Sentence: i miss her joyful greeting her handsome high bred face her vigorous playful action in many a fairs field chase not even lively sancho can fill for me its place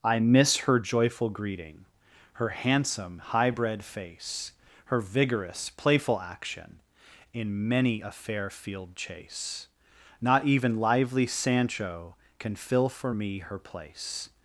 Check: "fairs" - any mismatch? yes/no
yes